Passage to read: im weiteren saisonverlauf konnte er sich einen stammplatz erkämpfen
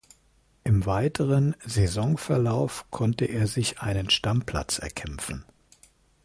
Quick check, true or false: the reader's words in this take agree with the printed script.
true